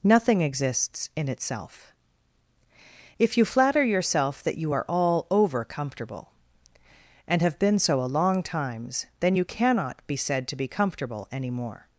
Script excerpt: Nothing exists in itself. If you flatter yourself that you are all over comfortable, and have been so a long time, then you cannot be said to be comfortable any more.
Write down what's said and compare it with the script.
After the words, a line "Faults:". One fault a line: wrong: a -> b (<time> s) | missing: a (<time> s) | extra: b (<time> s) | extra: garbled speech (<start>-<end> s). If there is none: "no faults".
Nothing exists in itself. If you flatter yourself that you are all over comfortable, and have been so a long times, then you cannot be said to be comfortable any more.
Faults:
wrong: time -> times (8.4 s)